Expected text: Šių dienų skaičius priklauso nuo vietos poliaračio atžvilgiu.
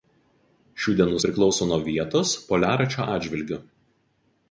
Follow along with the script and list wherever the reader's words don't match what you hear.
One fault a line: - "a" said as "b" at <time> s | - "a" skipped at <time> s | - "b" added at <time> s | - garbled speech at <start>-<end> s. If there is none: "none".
- "skaičius" skipped at 1.2 s